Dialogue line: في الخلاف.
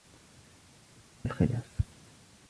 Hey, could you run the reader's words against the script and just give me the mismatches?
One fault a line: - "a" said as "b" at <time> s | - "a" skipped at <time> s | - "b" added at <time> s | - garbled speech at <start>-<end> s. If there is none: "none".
none